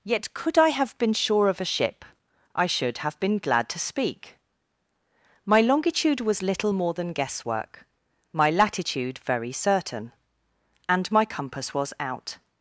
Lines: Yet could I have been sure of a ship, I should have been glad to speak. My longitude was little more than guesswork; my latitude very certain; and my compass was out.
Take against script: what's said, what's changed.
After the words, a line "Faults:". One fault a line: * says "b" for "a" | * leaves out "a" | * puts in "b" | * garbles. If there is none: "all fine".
Yet could I have been sure of a ship, I should have been glad to speak. My longitude was little more than guesswork; my latitude very certain; and my compass was out.
Faults:
all fine